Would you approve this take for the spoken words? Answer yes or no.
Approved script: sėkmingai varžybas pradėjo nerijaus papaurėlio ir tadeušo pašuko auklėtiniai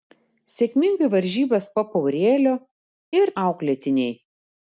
no